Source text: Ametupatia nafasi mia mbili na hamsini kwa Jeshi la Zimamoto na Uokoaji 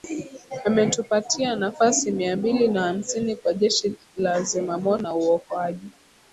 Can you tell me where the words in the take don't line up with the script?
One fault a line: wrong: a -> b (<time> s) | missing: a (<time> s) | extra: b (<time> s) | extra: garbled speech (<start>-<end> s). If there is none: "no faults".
no faults